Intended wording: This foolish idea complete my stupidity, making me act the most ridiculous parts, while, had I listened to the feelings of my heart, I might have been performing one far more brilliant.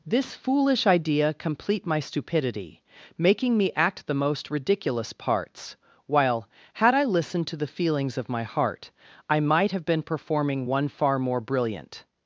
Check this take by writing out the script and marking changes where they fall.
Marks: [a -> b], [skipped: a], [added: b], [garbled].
This foolish idea complete my stupidity, making me act the most ridiculous parts, while, had I listened to the feelings of my heart, I might have been performing one far more brilliant.